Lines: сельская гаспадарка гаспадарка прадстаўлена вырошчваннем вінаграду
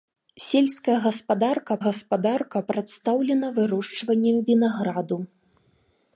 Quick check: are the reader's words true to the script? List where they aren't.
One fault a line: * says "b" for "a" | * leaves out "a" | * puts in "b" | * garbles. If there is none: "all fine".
all fine